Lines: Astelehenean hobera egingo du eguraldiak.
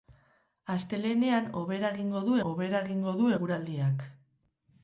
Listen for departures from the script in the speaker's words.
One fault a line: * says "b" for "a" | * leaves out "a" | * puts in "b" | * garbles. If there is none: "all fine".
* puts in "hobera egingo du"